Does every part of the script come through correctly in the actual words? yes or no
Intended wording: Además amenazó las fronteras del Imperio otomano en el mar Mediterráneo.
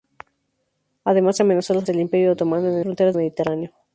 no